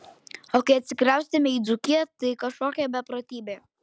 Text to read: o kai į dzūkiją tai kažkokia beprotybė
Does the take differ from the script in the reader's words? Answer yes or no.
yes